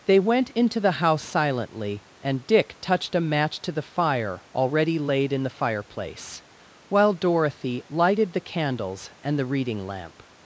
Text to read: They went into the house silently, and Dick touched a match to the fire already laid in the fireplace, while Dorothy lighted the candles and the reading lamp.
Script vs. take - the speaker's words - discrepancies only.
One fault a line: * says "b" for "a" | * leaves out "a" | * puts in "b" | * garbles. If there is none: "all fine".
all fine